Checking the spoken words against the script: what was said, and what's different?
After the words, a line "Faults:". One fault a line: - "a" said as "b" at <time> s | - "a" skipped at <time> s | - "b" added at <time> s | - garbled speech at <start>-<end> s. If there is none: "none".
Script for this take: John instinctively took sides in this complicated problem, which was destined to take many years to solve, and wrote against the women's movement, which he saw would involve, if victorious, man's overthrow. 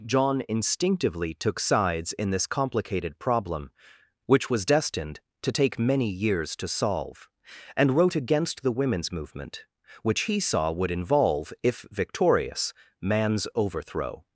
John instinctively took sides in this complicated problem, which was destined to take many years to solve, and wrote against the women's movement, which he saw would involve, if victorious, man's overthrow.
Faults:
none